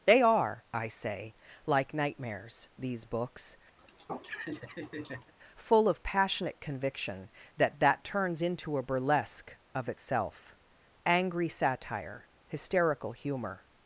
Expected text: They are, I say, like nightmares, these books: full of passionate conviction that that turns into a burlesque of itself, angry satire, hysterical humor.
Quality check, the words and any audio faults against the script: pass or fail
fail